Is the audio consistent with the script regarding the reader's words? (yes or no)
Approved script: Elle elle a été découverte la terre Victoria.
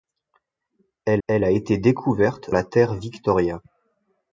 yes